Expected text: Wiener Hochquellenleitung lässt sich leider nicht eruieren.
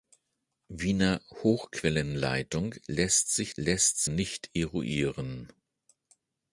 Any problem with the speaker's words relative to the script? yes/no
yes